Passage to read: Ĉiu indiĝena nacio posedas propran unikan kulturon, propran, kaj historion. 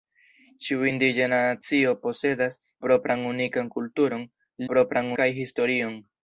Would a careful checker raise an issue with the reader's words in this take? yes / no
no